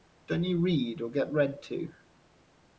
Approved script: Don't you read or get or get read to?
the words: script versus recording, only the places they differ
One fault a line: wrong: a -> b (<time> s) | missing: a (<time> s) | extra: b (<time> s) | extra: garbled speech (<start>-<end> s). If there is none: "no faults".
missing: or get (1.3 s)